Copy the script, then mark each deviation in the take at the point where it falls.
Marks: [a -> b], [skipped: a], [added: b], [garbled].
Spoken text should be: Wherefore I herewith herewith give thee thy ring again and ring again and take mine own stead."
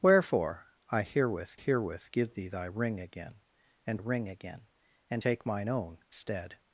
Wherefore I herewith herewith give thee thy ring again and ring again and take mine own stead."